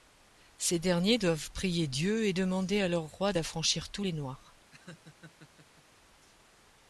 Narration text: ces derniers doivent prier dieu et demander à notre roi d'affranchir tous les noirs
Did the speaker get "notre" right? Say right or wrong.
wrong